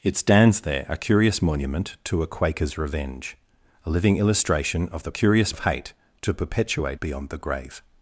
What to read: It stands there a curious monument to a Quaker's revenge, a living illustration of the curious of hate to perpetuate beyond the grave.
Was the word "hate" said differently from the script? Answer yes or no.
no